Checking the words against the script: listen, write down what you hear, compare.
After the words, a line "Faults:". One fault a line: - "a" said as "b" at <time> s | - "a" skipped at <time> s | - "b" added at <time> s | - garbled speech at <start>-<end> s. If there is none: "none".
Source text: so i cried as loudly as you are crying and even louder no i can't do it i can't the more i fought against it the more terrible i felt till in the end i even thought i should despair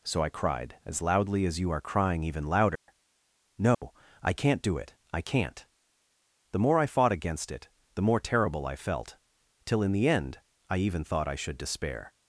so i cried as loudly as you are crying even louder no i can't do it i can't the more i fought against it the more terrible i felt till in the end i even thought i should despair
Faults:
- "and" skipped at 2.2 s